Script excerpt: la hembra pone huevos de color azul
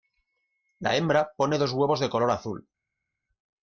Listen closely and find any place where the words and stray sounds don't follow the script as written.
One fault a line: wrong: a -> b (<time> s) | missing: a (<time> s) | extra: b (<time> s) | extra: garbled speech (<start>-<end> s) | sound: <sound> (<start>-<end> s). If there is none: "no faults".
extra: dos (1.6 s)